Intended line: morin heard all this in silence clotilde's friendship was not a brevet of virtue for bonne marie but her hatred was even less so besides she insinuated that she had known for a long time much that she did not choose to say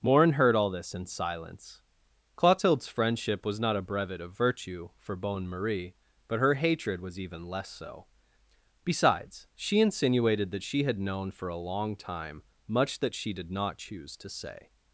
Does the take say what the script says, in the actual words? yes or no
yes